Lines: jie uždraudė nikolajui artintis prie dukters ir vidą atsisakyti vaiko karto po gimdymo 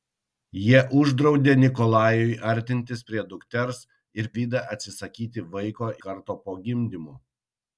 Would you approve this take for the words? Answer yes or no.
yes